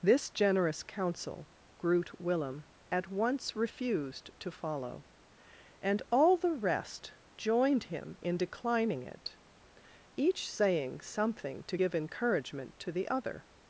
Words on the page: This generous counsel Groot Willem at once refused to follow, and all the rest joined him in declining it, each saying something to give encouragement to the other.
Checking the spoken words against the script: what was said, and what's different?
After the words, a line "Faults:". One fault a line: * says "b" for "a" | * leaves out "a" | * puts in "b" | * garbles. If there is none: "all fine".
This generous counsel Groot Willem at once refused to follow, and all the rest joined him in declining it, each saying something to give encouragement to the other.
Faults:
all fine